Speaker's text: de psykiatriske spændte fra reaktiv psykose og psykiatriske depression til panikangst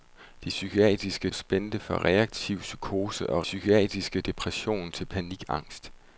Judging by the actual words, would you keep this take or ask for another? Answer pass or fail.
pass